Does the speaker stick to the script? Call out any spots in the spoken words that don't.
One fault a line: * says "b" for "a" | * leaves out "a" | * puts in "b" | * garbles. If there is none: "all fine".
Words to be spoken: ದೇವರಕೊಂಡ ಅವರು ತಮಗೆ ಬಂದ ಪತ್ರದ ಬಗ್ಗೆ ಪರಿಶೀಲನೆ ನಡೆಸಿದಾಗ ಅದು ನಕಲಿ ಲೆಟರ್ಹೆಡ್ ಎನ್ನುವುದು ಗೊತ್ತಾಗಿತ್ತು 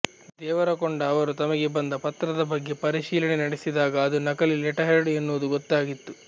all fine